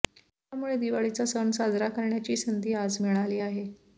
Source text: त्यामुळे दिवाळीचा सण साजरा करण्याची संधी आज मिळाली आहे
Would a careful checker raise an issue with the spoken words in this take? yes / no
no